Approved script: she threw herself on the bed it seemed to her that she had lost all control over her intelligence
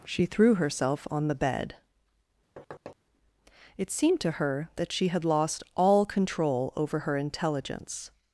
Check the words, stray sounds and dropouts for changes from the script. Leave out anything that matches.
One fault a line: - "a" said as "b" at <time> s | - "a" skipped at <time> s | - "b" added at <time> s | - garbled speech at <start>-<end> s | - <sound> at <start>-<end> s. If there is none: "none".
- thud at 2.6-3.0 s